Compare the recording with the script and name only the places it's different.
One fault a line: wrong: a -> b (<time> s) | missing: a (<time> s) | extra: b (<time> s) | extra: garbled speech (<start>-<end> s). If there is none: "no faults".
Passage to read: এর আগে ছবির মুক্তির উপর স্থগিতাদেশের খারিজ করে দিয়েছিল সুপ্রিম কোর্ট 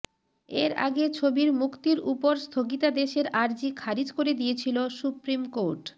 extra: আর্জি (3.4 s)